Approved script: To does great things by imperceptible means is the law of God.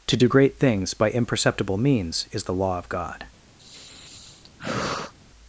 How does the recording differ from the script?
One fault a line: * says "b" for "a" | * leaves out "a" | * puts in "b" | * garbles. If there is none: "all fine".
* says "do" for "does"